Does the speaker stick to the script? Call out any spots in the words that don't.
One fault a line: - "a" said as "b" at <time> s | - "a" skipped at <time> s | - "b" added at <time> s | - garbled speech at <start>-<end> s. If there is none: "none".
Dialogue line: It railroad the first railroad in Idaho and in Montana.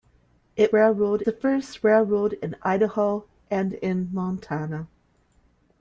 none